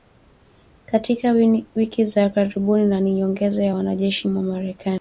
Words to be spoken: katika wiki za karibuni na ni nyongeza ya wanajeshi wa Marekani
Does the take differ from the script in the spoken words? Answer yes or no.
no